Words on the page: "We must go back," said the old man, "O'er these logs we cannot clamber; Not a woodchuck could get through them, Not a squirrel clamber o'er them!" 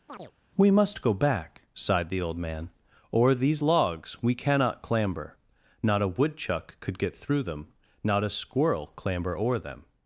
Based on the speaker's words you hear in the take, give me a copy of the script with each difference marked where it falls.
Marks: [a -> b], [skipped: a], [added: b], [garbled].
"We must go back," [said -> sighed] the old man, "O'er these logs we cannot clamber; Not a woodchuck could get through them, Not a squirrel clamber o'er them!"